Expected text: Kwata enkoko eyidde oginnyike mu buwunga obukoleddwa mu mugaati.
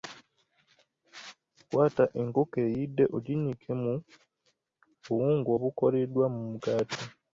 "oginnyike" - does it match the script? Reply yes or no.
yes